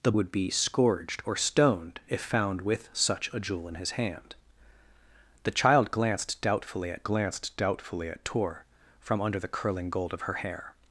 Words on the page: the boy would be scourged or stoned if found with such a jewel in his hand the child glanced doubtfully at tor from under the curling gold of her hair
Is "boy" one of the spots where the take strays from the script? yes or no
yes